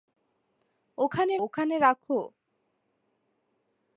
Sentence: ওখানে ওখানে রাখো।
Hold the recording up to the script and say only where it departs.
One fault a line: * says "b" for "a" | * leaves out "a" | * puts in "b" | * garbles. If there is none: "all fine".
all fine